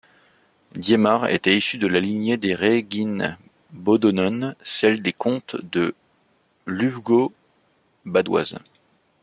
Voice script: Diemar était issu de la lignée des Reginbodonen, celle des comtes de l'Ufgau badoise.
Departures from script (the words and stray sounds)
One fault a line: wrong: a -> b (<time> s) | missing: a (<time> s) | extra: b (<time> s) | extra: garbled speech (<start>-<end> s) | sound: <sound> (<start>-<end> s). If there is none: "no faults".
no faults